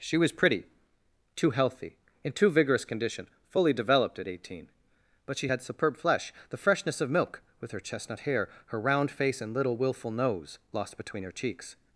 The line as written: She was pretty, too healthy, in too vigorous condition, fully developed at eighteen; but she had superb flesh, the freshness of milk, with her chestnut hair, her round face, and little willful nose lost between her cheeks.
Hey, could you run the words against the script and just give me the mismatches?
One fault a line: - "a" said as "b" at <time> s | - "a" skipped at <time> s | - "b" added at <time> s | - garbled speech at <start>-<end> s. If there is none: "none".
none